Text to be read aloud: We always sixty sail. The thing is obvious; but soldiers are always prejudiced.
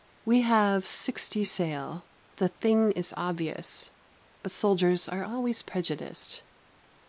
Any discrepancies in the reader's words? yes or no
yes